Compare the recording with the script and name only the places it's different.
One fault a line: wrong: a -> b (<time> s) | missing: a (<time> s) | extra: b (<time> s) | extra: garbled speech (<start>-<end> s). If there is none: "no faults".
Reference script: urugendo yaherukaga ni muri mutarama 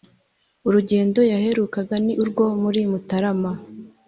extra: urwo (2.2 s)